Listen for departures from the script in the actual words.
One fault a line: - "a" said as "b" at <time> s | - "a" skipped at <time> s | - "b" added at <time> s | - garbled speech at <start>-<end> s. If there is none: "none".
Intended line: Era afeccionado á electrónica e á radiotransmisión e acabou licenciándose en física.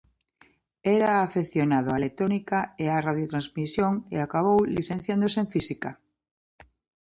none